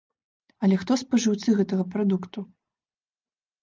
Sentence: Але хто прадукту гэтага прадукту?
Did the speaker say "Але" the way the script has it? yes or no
yes